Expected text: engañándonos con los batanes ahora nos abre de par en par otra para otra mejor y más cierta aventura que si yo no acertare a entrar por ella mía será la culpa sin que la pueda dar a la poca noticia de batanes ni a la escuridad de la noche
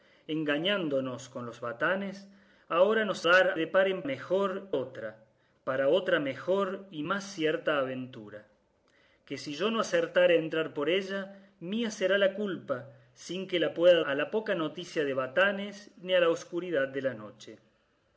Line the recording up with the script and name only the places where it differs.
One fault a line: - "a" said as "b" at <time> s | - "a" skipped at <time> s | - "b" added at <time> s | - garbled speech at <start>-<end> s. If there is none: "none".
- "abre" said as "dar" at 3.2 s
- "par" said as "mejor" at 4.0 s
- "dar" skipped at 14.0 s